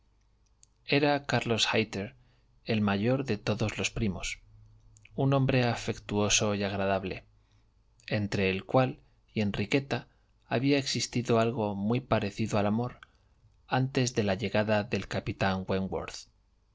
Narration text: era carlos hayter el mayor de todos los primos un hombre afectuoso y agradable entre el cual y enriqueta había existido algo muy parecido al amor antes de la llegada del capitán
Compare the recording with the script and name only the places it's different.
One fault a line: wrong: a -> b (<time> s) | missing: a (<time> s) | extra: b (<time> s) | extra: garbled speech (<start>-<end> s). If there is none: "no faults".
no faults